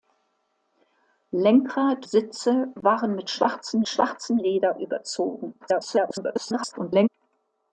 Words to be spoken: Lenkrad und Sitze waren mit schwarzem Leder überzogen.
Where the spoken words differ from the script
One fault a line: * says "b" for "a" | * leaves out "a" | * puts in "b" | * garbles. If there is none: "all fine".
* leaves out "und"
* puts in "schwarzem"
* garbles